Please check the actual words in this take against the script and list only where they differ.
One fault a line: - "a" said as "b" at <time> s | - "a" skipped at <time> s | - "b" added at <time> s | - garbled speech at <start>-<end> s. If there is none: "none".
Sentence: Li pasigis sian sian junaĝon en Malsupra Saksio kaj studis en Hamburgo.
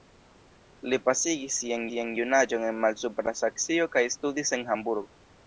none